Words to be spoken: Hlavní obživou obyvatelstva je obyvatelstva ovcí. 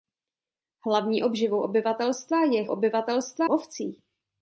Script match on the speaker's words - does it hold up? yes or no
yes